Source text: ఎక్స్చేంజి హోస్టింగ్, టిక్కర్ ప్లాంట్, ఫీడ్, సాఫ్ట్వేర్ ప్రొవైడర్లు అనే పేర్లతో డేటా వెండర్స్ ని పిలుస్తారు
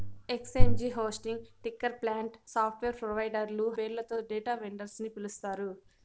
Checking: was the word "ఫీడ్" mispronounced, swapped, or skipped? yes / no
yes